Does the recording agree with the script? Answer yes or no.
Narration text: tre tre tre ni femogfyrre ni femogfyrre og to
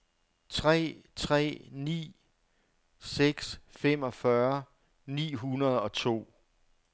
no